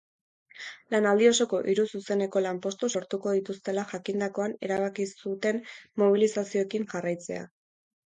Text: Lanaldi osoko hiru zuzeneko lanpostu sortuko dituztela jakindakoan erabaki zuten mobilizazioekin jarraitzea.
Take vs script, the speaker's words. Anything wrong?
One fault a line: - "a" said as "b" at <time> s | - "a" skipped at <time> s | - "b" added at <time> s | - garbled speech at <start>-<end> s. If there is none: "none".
none